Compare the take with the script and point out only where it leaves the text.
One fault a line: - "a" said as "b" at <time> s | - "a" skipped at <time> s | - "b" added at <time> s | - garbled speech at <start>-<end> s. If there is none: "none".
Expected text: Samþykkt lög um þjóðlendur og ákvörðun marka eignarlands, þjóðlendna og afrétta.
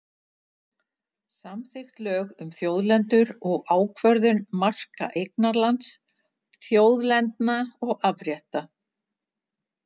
none